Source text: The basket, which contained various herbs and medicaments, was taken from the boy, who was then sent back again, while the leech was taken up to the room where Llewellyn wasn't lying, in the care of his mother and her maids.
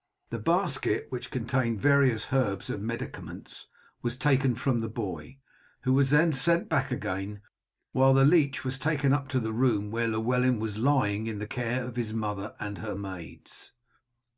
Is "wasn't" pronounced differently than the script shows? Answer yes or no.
yes